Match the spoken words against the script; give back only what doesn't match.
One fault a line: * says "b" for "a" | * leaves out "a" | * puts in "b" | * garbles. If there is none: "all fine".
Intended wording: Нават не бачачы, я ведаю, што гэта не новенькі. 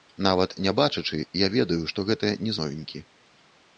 all fine